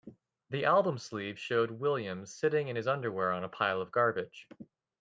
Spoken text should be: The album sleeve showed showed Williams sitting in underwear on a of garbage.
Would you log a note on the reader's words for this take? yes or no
yes